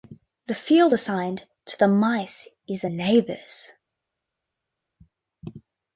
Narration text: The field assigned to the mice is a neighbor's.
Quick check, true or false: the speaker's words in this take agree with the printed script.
true